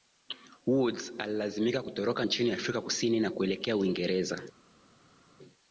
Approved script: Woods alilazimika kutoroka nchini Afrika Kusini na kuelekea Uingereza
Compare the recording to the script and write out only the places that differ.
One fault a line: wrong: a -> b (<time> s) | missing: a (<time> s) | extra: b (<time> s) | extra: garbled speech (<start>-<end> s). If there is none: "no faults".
no faults